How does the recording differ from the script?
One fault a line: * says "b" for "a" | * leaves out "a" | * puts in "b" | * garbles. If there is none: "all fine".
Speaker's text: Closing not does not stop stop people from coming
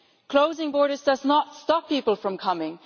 * says "borders" for "not"
* leaves out "stop"